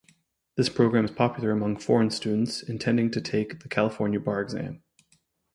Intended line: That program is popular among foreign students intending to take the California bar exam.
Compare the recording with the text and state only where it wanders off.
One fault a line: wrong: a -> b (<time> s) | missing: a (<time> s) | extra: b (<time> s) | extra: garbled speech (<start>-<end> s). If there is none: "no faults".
wrong: That -> This (0.6 s)